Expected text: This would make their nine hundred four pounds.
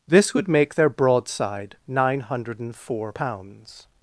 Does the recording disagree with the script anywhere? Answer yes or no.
yes